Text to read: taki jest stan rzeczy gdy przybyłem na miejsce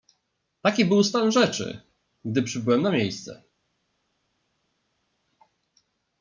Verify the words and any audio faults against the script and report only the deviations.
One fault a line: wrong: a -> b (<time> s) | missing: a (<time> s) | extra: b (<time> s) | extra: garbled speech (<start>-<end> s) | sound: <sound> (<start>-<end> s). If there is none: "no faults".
wrong: jest -> był (0.8 s)